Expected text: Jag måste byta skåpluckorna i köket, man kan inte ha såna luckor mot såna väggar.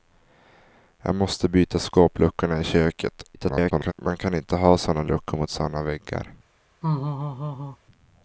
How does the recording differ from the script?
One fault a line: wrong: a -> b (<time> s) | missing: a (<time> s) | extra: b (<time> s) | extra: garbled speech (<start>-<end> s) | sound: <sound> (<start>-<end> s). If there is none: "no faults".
extra: garbled speech (3.3-3.9 s)
sound: laugh (6.8-7.8 s)